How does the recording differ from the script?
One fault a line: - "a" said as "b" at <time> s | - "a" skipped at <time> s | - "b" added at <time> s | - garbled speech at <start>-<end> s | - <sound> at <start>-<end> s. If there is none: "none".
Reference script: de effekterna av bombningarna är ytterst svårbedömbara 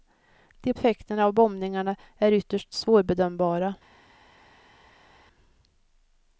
none